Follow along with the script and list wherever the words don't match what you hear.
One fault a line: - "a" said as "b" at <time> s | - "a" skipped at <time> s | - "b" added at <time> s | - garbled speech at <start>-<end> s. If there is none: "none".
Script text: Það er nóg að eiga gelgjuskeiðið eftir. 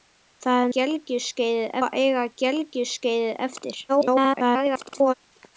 - "nóg" said as "gelgjuskeiðið" at 0.8 s
- garbled speech at 3.9-5.1 s